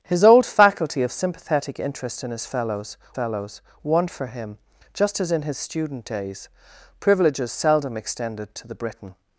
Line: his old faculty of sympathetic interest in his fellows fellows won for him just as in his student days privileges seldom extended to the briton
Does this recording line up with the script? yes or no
yes